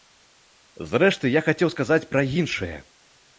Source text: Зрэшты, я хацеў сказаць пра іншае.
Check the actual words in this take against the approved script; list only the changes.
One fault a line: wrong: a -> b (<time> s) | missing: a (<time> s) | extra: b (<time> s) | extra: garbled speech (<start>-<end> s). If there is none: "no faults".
no faults